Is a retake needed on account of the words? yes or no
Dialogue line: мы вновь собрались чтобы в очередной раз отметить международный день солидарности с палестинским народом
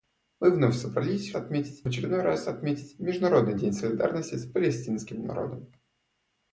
yes